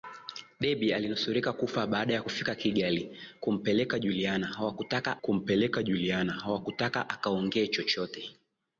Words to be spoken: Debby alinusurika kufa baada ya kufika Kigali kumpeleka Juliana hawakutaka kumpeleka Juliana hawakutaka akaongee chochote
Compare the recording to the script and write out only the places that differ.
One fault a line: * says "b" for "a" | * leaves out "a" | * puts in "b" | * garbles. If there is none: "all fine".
all fine